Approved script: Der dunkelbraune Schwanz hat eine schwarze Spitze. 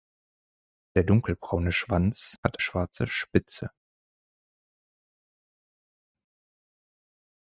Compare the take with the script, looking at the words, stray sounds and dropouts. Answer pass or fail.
fail